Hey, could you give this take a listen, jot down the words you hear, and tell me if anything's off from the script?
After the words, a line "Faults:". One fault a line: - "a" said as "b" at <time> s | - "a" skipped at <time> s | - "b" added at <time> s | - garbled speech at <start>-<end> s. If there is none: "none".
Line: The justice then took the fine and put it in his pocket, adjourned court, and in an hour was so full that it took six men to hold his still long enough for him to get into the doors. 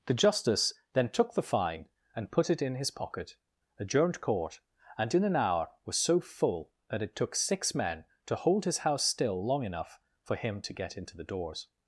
The justice then took the fine and put it in his pocket, adjourned court, and in an hour was so full that it took six men to hold his house still long enough for him to get into the doors.
Faults:
- "house" added at 8.8 s